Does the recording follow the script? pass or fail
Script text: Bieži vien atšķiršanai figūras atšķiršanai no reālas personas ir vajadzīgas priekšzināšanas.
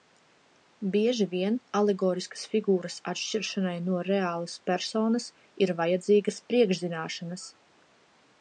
fail